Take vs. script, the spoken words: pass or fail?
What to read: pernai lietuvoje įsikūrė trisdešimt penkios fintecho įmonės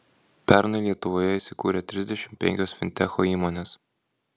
pass